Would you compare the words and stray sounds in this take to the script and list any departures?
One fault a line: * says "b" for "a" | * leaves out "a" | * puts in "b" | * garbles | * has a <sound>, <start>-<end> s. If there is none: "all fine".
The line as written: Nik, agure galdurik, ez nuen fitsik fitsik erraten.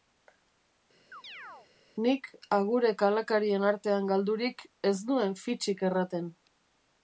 * has a chirp, 1.1-1.7 s
* puts in "kalakarien artean"
* leaves out "fitsik"